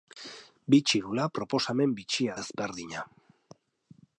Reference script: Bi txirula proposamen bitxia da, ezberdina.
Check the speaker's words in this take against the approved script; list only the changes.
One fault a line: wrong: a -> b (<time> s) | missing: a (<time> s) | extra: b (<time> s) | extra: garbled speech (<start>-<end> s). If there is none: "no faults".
missing: da (2.4 s)